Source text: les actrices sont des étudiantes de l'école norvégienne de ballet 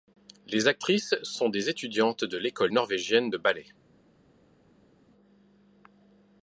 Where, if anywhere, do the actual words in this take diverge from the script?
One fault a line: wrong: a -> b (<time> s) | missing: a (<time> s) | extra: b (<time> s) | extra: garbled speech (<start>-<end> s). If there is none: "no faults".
no faults